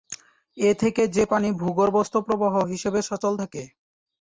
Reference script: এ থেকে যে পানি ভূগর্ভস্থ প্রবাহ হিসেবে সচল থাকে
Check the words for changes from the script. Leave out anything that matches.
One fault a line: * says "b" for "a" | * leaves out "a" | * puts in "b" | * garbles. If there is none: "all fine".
all fine